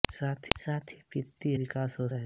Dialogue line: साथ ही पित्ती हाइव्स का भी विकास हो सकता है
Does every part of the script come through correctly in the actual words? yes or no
no